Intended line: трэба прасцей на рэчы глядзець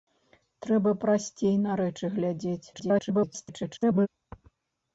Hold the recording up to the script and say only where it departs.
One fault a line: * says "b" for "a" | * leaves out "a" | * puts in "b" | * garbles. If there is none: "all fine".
* garbles